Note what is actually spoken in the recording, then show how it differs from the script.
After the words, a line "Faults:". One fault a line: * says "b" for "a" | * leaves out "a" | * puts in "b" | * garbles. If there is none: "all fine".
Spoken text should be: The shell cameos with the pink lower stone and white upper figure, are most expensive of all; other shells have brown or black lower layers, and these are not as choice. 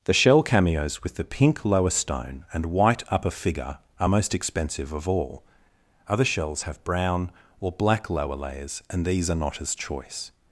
The shell cameos with the pink lower stone and white upper figure, are most expensive of all; other shells have brown or black lower layers, and these are not as choice.
Faults:
all fine